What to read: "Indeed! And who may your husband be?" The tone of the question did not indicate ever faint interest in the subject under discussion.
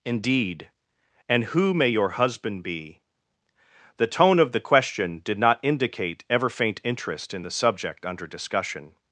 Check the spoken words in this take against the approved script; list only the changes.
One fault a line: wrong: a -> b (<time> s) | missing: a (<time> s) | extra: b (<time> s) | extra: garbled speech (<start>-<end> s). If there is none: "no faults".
no faults